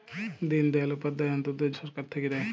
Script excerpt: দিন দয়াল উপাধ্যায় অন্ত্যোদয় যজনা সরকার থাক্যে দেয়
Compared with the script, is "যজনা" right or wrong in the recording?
wrong